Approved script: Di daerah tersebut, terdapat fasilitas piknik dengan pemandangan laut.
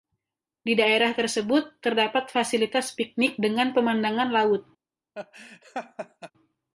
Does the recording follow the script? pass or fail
pass